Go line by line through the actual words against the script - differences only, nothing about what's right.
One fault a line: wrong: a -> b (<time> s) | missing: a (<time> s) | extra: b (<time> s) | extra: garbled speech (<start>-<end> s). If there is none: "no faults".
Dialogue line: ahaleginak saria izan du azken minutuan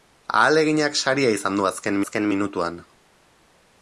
extra: azken (2.0 s)